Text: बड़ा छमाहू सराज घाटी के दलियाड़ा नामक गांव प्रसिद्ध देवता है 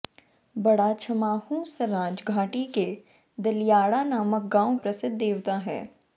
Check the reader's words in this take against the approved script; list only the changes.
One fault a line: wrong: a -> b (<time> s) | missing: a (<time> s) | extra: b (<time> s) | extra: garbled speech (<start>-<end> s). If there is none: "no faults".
no faults